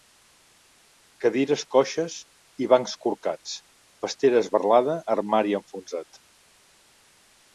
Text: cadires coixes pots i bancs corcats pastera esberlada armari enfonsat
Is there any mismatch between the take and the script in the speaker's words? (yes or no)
yes